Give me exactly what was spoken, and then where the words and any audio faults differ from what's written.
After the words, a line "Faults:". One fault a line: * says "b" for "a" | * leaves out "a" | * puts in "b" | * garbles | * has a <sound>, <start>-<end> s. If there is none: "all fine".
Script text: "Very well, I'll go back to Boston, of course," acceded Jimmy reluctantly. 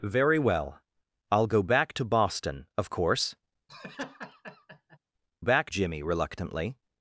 "Very well, I'll go back to Boston, of course," back Jimmy reluctantly.
Faults:
* has a laugh, 3.7-5.0 s
* says "back" for "acceded"